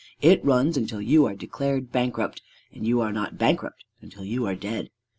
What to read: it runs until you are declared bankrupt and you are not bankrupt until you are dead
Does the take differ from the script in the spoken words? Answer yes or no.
no